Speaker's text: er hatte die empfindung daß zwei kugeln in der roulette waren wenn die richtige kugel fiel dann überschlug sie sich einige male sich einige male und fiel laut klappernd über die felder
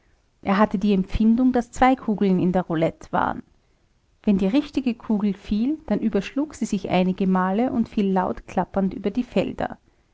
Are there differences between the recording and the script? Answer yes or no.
yes